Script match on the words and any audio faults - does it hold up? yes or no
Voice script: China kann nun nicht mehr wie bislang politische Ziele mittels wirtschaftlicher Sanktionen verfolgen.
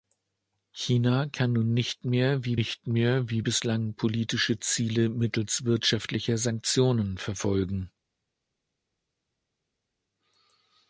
no